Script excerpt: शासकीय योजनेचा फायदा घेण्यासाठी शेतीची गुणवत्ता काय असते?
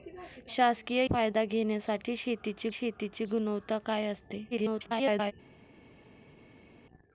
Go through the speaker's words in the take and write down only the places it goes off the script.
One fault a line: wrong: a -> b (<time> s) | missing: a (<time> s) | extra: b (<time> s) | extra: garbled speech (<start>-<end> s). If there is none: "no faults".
missing: योजनेचा (1.0 s)
extra: शेतीची (2.7 s)
extra: garbled speech (4.5-5.3 s)